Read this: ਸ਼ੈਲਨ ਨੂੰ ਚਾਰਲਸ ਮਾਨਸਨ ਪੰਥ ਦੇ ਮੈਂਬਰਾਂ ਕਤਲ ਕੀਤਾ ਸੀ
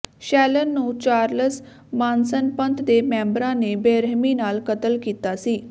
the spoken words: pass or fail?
fail